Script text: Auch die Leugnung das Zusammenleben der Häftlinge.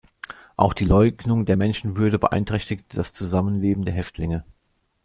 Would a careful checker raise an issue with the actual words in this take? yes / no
yes